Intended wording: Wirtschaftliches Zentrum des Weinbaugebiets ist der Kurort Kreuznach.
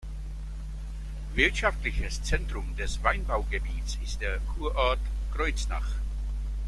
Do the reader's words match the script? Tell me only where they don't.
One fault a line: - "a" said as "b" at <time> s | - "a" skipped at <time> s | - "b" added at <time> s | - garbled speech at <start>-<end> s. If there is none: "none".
none